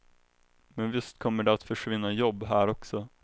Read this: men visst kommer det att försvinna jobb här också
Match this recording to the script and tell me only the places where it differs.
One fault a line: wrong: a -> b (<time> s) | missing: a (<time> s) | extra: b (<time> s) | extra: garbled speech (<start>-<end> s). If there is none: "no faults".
no faults